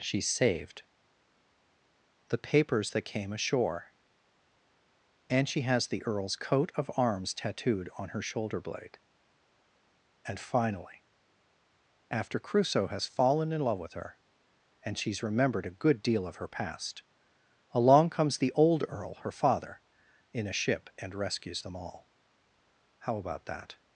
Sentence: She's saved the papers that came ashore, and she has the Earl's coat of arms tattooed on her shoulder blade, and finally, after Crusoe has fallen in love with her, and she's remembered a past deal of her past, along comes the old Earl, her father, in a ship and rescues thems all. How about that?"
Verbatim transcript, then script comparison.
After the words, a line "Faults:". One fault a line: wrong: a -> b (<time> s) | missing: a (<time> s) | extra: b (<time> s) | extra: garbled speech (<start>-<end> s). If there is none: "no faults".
She's saved the papers that came ashore, and she has the Earl's coat of arms tattooed on her shoulder blade, and finally, after Crusoe has fallen in love with her, and she's remembered a good deal of her past, along comes the old Earl, her father, in a ship and rescues them all. How about that?"
Faults:
wrong: past -> good (15.8 s)
wrong: thems -> them (21.6 s)